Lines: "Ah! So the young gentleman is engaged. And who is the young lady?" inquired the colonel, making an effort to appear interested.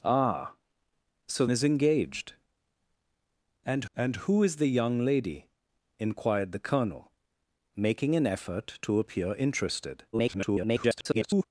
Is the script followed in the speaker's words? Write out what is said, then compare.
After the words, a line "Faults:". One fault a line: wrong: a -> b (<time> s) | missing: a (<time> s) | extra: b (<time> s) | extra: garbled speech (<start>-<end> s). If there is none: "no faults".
"Ah! So is engaged. And and who is the young lady?" inquired the colonel, making an effort to appear interested. [garbled]
Faults:
missing: the young gentleman (1.4 s)
extra: and (3.9 s)
extra: garbled speech (10.1-11.4 s)